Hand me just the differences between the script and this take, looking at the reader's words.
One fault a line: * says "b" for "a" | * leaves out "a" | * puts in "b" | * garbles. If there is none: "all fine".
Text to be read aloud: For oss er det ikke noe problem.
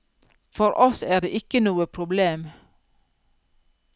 all fine